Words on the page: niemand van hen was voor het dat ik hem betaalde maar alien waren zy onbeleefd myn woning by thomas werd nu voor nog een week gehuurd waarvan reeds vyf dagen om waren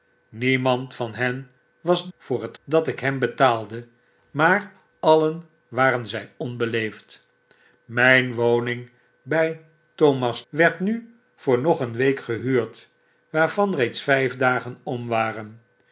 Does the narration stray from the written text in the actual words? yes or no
no